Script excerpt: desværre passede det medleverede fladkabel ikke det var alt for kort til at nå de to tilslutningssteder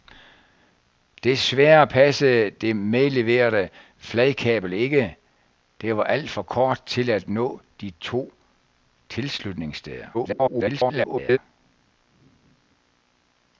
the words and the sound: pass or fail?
fail